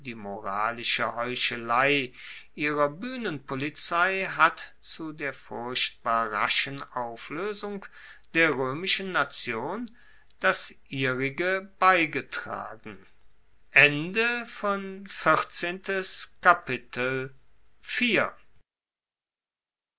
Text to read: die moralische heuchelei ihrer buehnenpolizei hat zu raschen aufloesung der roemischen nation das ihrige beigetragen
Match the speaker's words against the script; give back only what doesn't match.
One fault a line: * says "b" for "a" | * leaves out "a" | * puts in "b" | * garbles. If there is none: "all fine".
* puts in "der furchtbar"